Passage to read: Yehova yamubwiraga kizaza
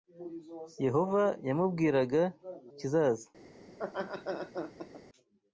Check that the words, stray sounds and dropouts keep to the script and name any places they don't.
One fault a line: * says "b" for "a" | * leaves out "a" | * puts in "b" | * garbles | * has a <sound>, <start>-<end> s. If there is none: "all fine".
* has a laugh, 3.7-5.0 s